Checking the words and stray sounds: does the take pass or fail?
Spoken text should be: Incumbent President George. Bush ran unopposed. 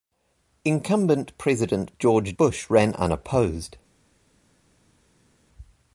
pass